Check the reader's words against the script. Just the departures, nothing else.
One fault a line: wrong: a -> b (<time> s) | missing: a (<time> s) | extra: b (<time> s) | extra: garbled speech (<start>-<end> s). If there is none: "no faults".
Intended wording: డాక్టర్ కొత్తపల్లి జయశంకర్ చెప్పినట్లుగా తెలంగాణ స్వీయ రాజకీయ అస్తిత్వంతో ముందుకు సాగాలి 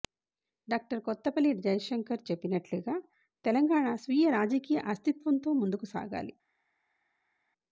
no faults